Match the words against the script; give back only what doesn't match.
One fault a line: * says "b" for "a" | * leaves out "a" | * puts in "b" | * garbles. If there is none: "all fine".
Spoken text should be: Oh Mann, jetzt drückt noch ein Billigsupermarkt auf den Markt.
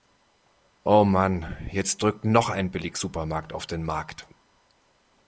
all fine